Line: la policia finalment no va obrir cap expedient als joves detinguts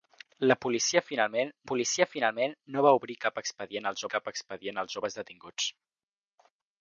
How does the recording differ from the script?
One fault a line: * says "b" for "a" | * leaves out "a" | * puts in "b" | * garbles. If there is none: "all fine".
* puts in "policia finalment"
* puts in "cap expedient als"